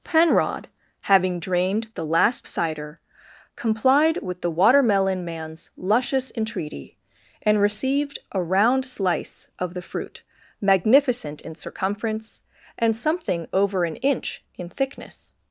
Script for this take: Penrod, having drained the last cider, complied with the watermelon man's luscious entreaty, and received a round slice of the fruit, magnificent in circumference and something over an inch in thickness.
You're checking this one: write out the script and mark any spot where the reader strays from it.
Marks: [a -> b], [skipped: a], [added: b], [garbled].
Penrod, having drained the last cider, complied with the watermelon man's luscious entreaty, and received a round slice of the fruit, magnificent in circumference and something over an inch in thickness.